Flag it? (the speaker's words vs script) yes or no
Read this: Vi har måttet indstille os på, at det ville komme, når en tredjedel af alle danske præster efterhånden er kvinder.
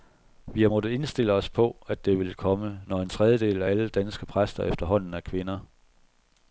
no